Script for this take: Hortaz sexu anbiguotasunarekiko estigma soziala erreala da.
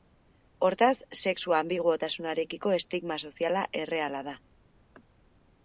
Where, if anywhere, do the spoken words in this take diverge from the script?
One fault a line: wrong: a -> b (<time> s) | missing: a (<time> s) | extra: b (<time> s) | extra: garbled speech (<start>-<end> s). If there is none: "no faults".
no faults